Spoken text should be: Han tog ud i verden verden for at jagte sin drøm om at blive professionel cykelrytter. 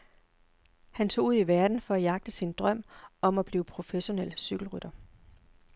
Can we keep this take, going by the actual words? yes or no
no